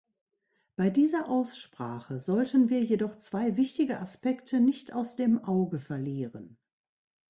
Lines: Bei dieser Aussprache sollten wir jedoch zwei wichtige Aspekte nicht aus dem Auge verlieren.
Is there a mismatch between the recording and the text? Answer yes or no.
no